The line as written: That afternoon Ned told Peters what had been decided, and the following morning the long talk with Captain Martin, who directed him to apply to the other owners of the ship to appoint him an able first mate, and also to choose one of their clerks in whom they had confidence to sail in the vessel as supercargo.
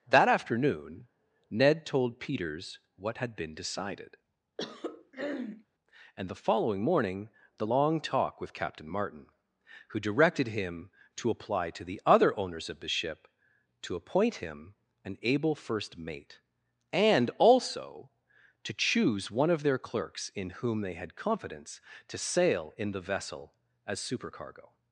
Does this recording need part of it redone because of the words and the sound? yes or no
yes